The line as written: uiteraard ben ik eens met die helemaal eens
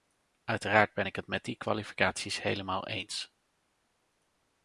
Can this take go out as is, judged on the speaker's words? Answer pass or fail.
fail